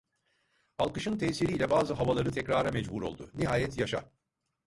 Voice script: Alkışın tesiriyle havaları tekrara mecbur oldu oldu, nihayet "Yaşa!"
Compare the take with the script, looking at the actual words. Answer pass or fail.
fail